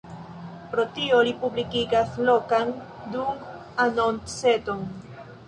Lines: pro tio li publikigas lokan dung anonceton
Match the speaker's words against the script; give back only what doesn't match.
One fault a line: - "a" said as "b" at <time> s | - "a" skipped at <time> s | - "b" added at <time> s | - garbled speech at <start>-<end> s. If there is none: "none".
none